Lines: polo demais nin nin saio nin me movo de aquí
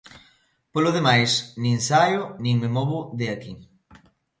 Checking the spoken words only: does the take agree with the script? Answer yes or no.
no